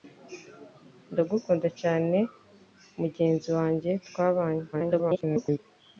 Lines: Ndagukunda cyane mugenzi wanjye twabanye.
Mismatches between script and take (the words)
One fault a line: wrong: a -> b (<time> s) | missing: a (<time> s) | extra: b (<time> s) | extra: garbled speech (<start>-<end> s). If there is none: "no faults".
extra: garbled speech (4.7-5.6 s)